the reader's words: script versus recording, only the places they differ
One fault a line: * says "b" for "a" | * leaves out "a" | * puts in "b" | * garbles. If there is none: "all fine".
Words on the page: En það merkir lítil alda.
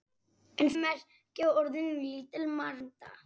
* leaves out "það"